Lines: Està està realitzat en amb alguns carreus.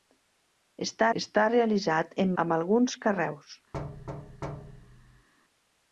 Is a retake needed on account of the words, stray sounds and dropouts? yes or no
yes